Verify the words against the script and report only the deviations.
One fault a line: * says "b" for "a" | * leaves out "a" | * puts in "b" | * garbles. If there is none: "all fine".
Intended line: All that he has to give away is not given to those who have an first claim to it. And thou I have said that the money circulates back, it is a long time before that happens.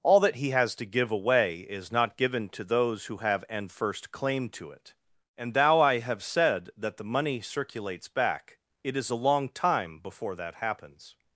all fine